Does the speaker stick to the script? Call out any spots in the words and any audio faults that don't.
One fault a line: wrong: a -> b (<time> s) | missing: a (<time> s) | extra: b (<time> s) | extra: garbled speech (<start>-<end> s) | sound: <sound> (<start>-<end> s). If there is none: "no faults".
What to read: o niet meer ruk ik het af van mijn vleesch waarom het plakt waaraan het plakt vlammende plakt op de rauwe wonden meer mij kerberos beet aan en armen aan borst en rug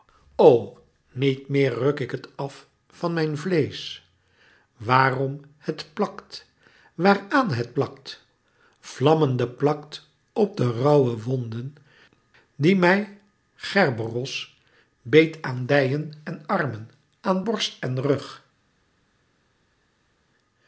wrong: meer -> die (12.5 s)
extra: dijen (15.7 s)